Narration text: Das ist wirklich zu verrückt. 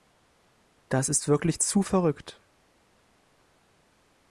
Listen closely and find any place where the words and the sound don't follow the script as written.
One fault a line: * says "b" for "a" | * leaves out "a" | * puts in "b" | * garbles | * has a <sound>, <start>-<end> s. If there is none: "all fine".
all fine